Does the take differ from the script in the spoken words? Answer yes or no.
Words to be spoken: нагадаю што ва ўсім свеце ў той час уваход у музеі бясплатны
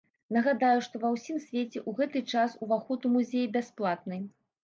yes